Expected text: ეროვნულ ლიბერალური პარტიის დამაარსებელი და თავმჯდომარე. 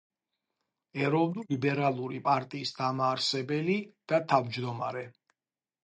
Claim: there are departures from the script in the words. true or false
false